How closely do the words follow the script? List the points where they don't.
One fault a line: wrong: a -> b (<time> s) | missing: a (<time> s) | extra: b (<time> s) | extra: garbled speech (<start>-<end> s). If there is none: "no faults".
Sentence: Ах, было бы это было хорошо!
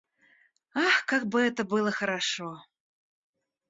wrong: было -> как (1.1 s)